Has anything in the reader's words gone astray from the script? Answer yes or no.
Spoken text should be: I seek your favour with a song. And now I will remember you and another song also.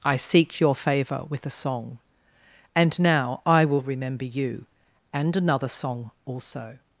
no